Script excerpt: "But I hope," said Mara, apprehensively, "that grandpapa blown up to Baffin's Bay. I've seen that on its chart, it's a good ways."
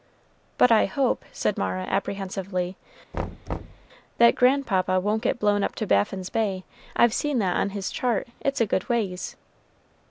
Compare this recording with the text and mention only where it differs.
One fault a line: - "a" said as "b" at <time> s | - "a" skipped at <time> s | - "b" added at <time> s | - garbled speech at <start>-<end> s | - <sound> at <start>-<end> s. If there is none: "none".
- thud at 3.1-3.9 s
- "won't get" added at 5.0 s
- "its" said as "his" at 7.7 s